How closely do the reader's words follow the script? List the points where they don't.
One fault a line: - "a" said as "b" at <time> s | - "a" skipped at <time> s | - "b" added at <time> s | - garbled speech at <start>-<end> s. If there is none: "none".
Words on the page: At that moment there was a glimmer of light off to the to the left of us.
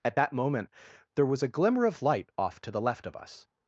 - "to the" skipped at 2.8 s